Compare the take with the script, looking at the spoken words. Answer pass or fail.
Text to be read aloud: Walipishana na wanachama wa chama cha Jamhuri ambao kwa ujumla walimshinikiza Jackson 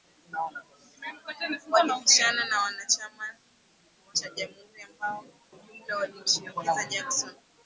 fail